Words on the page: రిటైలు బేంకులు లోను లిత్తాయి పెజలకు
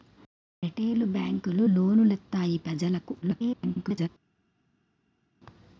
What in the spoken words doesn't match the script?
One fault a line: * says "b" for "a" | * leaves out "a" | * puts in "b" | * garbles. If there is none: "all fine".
* garbles